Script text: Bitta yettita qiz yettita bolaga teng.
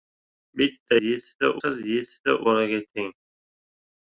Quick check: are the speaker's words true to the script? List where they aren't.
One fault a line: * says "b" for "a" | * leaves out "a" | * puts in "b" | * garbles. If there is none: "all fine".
all fine